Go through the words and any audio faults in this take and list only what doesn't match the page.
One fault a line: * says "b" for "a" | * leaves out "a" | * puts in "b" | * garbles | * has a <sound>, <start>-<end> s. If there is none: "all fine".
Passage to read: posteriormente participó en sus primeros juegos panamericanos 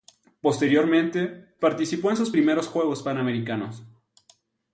all fine